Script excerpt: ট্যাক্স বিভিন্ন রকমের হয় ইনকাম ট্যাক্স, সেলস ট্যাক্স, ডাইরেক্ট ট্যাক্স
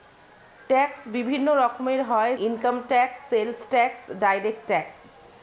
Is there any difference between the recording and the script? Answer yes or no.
no